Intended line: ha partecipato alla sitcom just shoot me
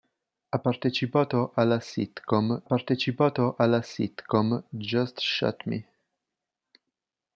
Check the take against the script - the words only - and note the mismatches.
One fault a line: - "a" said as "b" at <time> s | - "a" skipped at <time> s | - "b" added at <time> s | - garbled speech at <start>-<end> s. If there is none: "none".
- "partecipato alla sitcom" added at 2.6 s